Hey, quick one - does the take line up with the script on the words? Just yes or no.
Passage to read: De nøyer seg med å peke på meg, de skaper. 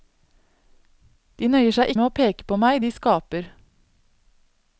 yes